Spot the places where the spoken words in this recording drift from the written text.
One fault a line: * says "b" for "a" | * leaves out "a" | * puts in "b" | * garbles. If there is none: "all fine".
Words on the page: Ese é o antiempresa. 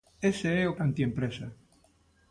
all fine